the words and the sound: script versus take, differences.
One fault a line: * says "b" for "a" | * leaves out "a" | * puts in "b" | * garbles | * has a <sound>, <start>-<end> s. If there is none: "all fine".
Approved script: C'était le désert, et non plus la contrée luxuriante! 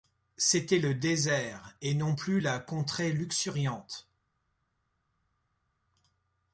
all fine